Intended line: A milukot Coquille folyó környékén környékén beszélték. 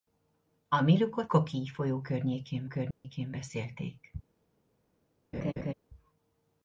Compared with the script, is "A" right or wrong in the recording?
right